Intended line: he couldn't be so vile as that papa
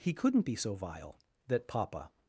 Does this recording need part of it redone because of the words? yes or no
yes